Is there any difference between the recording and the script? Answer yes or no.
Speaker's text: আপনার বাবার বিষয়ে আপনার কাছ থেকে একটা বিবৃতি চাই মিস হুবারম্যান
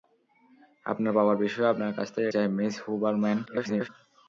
yes